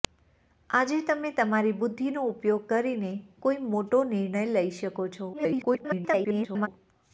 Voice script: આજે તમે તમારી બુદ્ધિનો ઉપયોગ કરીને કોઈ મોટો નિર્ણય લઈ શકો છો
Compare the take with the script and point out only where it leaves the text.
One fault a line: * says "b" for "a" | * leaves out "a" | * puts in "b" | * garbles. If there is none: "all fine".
* garbles